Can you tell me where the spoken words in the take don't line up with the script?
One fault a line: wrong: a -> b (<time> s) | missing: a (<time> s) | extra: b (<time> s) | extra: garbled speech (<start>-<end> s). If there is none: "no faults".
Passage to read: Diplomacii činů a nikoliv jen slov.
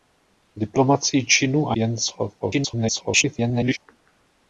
missing: nikoliv (1.8 s)
extra: garbled speech (2.4-3.8 s)